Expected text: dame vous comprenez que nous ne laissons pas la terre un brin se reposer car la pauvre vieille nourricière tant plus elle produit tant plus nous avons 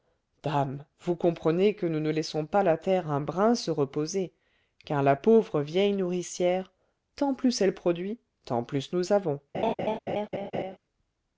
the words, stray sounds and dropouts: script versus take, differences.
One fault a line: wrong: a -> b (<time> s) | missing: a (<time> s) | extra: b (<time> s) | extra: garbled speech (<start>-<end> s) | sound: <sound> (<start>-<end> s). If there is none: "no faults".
sound: laugh (9.5-10.8 s)